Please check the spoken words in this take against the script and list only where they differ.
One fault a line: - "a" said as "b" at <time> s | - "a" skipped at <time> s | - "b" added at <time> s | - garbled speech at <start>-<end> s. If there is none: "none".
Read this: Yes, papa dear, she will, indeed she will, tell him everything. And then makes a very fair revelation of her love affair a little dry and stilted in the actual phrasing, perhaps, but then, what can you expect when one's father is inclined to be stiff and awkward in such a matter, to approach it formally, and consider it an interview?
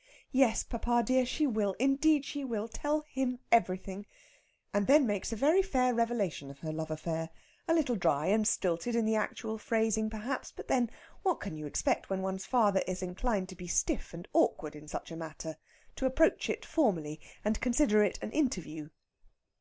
none